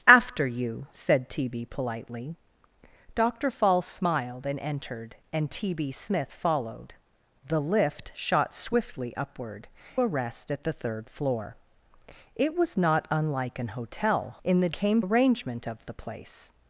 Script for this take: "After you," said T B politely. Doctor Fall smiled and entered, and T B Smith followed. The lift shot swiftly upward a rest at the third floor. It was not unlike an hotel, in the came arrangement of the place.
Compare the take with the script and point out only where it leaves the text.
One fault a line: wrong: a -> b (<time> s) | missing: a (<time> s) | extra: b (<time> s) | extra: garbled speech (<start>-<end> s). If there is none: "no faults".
no faults